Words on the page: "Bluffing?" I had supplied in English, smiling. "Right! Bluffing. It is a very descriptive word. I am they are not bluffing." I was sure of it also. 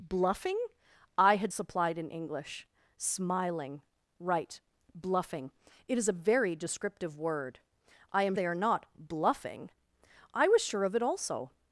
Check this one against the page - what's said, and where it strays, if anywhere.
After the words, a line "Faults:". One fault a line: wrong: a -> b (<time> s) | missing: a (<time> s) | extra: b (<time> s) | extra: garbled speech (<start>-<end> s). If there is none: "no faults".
"Bluffing?" I had supplied in English, smiling. "Right! Bluffing. It is a very descriptive word. I am they are not bluffing." I was sure of it also.
Faults:
no faults